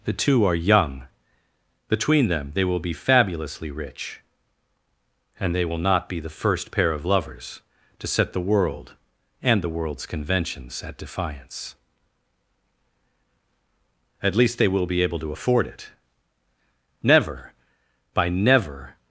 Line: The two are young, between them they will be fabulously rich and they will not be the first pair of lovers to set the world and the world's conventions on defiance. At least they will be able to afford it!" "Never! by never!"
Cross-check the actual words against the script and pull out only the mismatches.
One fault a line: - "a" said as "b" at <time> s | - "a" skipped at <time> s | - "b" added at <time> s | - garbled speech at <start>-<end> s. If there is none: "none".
- "on" said as "at" at 10.8 s